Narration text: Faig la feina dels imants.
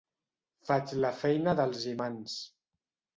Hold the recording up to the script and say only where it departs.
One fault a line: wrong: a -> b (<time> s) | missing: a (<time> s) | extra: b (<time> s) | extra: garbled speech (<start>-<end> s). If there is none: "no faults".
no faults